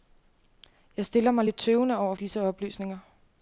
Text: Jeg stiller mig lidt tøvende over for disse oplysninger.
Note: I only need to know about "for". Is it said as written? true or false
false